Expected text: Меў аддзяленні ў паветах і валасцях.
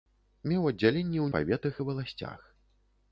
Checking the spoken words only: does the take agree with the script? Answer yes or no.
yes